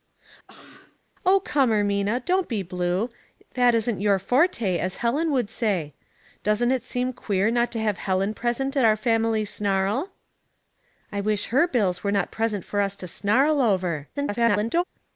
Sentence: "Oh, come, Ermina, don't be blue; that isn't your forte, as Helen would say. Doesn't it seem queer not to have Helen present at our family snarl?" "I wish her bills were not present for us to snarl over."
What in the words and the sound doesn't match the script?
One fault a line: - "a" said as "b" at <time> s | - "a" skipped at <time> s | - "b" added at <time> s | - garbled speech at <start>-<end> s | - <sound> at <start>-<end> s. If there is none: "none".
- cough at 0.5-1.0 s
- garbled speech at 14.1-14.8 s